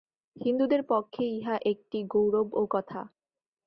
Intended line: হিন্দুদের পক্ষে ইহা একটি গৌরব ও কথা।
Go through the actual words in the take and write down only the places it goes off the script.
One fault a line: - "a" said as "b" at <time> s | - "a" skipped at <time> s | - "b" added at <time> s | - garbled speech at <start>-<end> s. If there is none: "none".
none